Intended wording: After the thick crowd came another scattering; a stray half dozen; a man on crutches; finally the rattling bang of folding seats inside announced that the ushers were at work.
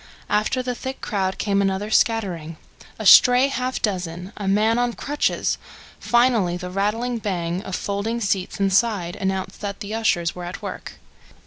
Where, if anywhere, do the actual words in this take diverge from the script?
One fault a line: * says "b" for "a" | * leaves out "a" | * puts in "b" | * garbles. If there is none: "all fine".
all fine